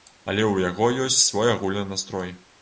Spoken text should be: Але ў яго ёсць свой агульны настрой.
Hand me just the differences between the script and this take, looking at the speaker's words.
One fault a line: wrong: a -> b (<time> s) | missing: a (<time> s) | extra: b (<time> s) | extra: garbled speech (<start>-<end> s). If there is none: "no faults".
no faults